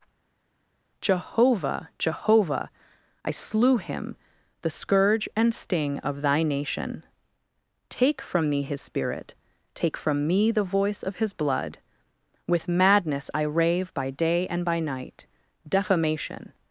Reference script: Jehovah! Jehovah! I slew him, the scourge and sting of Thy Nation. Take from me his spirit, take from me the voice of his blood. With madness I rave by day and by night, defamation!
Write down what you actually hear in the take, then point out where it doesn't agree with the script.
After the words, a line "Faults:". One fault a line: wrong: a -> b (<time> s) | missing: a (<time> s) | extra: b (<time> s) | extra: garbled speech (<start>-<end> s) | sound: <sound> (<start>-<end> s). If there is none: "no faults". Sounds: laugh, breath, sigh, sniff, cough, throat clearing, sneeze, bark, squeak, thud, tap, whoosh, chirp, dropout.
Jehovah! Jehovah! I slew him, the scourge and sting of Thy Nation. Take from me his spirit, take from me the voice of his blood. With madness I rave by day and by night, defamation!
Faults:
no faults